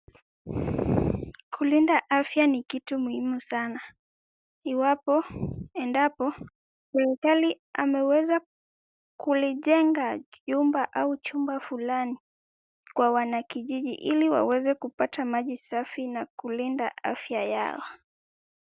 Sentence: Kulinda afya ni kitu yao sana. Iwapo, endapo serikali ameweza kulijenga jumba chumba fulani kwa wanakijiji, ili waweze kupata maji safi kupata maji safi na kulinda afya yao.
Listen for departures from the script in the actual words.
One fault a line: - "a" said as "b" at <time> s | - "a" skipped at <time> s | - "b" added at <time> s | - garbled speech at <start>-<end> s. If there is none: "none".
- "yao" said as "muhimu" at 3.0 s
- "au" added at 10.9 s
- "kupata maji safi" skipped at 16.1 s